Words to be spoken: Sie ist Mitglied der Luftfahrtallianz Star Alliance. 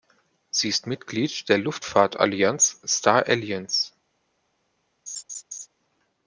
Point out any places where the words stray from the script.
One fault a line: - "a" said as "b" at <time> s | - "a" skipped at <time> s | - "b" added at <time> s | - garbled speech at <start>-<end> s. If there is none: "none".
none